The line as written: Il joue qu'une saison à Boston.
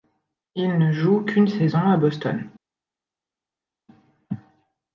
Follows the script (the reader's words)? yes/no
no